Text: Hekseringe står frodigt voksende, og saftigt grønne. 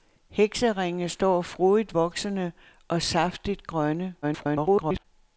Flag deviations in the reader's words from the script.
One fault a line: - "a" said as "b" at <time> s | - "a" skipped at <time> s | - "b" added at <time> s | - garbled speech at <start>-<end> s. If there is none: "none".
- garbled speech at 4.2-5.0 s